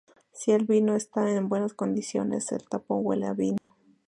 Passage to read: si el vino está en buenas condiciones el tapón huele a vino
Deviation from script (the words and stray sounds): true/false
true